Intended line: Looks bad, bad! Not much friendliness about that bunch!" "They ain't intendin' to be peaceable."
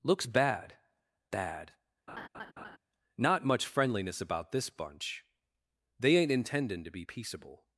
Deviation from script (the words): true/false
true